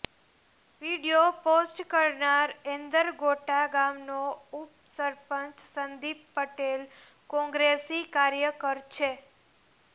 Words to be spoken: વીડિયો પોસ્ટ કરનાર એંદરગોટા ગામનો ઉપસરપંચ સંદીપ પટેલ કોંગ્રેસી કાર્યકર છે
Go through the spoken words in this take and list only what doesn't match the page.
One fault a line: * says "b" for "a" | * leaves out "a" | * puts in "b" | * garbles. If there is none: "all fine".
all fine